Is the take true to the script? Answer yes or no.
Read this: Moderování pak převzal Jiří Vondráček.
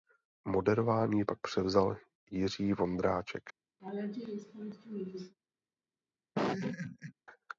yes